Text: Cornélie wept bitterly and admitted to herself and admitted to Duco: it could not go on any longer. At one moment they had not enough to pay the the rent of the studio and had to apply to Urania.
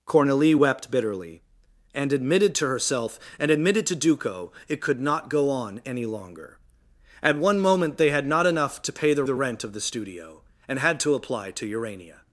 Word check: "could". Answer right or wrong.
right